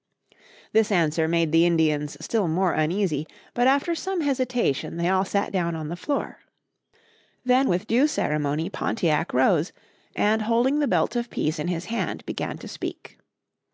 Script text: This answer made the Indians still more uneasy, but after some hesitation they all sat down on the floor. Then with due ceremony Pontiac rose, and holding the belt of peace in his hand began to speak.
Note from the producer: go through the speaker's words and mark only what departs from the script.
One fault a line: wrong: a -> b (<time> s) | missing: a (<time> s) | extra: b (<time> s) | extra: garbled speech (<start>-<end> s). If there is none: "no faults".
no faults